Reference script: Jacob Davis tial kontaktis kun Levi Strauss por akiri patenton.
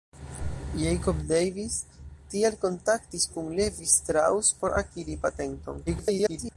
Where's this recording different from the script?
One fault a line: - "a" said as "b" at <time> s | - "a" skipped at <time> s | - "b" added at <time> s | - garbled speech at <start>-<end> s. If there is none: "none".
- garbled speech at 5.9-6.6 s